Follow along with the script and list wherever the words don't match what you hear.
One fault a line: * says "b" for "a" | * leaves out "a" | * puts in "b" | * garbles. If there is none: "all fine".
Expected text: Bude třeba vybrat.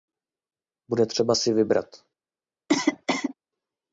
* puts in "si"